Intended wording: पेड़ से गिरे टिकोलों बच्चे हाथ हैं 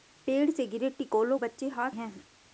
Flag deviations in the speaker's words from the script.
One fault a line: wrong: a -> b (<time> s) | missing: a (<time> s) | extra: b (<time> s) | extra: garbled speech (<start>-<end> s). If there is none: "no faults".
no faults